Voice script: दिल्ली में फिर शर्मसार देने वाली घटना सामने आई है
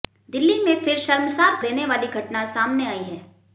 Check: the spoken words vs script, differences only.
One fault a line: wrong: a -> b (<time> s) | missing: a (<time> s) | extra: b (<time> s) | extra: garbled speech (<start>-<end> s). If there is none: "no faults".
no faults